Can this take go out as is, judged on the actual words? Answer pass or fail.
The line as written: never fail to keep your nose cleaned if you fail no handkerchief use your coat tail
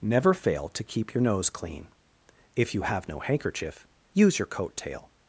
fail